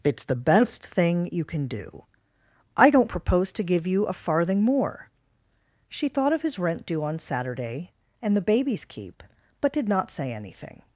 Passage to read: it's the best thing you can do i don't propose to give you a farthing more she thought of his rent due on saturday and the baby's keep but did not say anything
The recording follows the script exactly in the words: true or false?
true